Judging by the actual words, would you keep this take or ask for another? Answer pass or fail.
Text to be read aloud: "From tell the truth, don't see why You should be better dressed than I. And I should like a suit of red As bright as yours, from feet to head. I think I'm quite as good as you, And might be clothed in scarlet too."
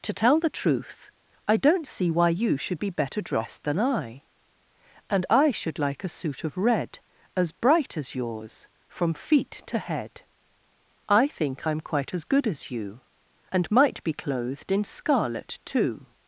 fail